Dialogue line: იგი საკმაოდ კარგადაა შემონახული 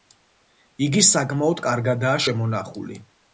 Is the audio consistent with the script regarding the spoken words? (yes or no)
yes